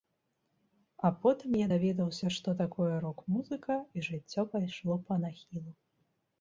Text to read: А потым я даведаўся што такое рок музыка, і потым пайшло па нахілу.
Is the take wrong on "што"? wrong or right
right